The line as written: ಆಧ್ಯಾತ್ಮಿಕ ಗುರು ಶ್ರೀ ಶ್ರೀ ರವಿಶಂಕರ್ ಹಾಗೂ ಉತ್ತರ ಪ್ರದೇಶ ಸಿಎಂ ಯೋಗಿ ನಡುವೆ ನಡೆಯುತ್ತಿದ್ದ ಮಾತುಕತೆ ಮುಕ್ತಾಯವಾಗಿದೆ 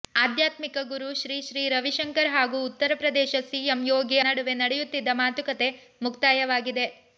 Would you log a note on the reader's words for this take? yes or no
no